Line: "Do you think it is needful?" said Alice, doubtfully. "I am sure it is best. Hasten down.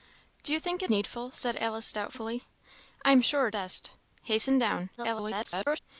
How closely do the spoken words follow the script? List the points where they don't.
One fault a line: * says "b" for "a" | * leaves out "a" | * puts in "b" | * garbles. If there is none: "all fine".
* leaves out "is"
* leaves out "is"
* garbles